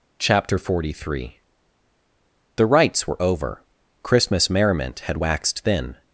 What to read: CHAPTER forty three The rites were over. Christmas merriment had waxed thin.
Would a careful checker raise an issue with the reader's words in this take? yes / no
no